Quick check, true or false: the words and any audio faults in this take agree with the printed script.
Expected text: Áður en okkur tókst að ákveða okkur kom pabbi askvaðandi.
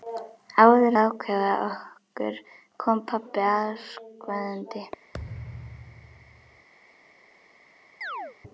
false